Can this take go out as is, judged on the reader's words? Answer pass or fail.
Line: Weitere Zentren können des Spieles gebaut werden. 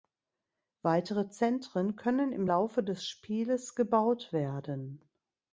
fail